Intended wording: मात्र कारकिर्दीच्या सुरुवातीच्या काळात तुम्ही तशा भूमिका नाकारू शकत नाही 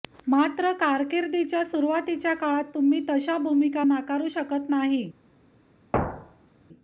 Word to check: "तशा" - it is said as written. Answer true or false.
true